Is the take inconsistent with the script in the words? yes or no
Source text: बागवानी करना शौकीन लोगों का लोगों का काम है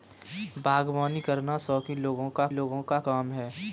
no